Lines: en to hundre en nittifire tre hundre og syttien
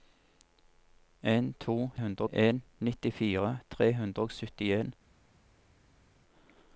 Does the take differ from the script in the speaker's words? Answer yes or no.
no